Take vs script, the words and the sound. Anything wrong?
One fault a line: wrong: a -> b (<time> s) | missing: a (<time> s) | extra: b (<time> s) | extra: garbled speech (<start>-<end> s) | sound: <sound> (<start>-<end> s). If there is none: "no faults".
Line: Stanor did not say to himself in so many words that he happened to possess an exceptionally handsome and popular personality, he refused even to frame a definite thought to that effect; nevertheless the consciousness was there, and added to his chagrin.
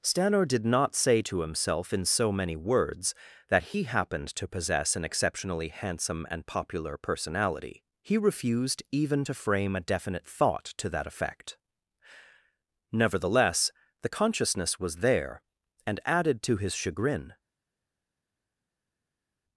no faults